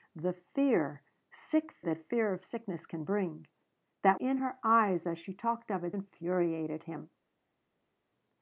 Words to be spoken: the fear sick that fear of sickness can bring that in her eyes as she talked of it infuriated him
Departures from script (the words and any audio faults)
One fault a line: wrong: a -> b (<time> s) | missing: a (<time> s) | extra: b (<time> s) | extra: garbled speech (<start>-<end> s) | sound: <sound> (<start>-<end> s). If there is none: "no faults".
no faults